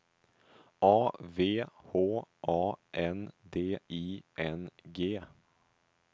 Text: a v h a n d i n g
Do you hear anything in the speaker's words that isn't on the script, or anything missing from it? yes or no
no